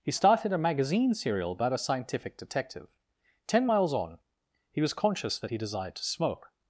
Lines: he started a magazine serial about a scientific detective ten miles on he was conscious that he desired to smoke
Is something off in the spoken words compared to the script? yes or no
no